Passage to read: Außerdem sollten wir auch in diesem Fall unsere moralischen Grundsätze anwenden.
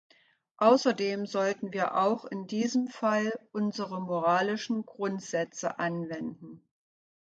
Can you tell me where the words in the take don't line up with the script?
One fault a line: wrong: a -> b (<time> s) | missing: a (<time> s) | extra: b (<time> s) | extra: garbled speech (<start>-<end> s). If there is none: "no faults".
no faults